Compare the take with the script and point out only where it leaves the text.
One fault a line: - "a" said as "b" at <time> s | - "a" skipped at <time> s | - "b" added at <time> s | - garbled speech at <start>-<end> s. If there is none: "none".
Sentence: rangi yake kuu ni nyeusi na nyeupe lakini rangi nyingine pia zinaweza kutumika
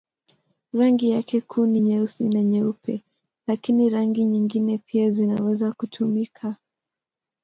none